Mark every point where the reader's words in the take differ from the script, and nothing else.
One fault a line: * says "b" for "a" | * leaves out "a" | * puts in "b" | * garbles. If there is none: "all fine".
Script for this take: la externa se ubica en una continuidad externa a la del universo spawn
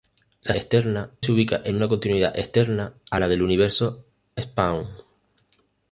all fine